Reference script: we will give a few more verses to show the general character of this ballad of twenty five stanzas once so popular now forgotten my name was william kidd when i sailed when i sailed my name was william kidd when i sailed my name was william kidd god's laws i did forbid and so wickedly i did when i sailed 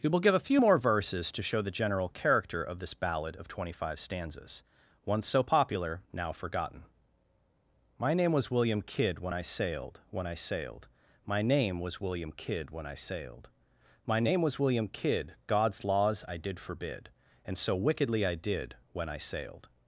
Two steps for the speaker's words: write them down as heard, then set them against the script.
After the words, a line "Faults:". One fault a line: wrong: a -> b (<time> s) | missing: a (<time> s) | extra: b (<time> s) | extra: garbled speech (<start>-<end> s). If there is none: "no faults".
we will give a few more verses to show the general character of this ballad of twenty five stanzas once so popular now forgotten my name was william kidd when i sailed when i sailed my name was william kidd when i sailed my name was william kidd god's laws i did forbid and so wickedly i did when i sailed
Faults:
no faults